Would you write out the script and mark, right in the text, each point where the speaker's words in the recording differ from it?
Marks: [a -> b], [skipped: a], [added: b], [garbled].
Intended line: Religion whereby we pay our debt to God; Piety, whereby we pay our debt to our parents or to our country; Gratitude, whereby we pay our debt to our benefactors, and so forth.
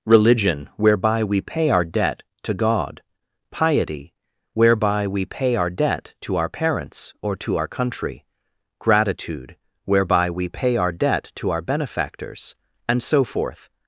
Religion whereby we pay our debt to God; Piety, whereby we pay our debt to our parents or to our country; Gratitude, whereby we pay our debt to our benefactors, and so forth.